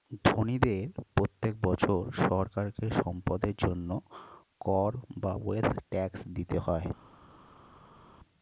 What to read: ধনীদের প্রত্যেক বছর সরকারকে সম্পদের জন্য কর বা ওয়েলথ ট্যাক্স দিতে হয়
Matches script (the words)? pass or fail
pass